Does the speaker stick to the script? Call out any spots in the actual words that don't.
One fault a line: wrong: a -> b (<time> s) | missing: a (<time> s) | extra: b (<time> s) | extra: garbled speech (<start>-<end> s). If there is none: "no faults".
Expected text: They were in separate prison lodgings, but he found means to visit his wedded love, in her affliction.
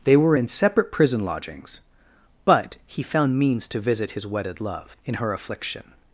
no faults